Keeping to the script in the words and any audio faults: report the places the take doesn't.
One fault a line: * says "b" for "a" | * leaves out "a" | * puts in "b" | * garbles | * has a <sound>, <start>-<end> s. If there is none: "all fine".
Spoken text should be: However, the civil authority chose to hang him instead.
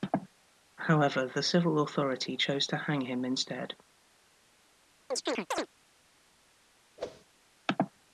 * has a chirp, 5.1-5.7 s
* has a whoosh, 7.0-7.3 s